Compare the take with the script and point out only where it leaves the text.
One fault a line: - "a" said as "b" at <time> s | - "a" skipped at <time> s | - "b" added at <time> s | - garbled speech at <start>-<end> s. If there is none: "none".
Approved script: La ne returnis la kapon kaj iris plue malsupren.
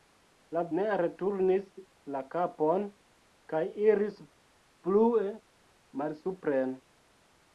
none